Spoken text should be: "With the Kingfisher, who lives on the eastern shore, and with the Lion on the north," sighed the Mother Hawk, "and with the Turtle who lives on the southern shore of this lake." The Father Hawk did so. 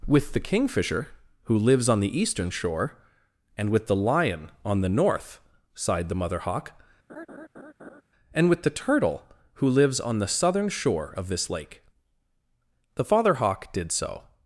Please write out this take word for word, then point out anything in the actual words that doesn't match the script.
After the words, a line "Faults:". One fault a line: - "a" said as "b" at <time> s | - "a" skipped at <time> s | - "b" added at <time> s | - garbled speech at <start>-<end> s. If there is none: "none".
"With the Kingfisher, who lives on the eastern shore, and with the Lion on the north," sighed the Mother Hawk, "and with the Turtle who lives on the southern shore of this lake." The Father Hawk did so.
Faults:
none